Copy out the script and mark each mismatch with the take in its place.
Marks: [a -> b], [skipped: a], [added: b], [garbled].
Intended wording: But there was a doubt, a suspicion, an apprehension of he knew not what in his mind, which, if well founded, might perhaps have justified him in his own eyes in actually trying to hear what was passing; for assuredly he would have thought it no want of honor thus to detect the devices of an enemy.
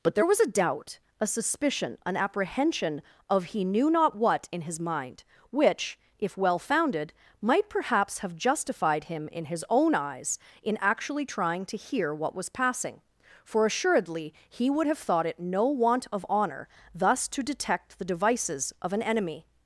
But there was a doubt, a suspicion, an apprehension of he knew not what in his mind, which, if well founded, might perhaps have justified him in his own eyes in actually trying to hear what was passing; for assuredly he would have thought it no want of honor thus to detect the devices of an enemy.